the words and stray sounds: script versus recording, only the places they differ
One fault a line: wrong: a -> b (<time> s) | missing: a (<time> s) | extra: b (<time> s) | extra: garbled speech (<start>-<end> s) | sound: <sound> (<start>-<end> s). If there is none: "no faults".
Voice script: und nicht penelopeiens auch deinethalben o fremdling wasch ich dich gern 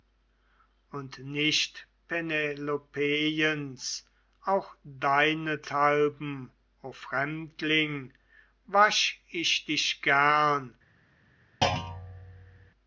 sound: thud (11.6-12.7 s)